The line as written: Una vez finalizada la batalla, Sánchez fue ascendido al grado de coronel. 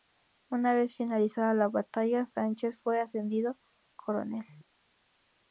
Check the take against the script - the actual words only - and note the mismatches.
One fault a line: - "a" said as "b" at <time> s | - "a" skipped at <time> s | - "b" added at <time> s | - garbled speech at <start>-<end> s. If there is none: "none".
- "al grado de" skipped at 3.6 s